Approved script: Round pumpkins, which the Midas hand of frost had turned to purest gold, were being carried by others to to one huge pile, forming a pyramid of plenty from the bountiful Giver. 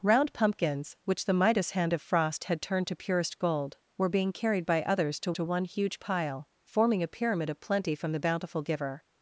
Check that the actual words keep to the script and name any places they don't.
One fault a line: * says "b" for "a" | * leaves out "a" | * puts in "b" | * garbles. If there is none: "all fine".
all fine